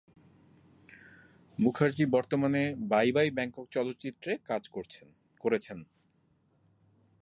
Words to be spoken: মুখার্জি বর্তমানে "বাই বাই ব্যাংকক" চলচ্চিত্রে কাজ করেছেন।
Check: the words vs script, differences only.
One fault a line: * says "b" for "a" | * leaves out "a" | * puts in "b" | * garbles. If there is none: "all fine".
all fine